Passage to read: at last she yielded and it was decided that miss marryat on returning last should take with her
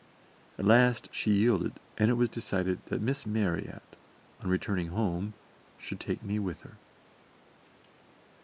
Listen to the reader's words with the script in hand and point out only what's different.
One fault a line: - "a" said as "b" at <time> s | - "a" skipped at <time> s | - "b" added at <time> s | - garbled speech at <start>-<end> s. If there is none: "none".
- "last" said as "home" at 4.9 s
- "me" added at 6.2 s